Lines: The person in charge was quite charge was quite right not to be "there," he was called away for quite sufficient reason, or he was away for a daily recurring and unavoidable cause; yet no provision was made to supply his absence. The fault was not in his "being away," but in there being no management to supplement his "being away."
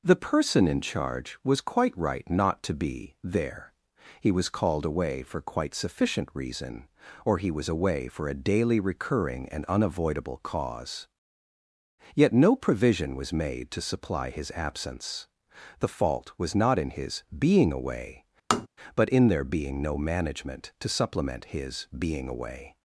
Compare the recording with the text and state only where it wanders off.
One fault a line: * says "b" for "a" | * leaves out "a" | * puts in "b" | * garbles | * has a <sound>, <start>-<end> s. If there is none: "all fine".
* leaves out "charge was quite"
* has a tap, 18.5-18.7 s